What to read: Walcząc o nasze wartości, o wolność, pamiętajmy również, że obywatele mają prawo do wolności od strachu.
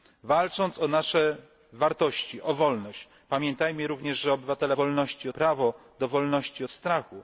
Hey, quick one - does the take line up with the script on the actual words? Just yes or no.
no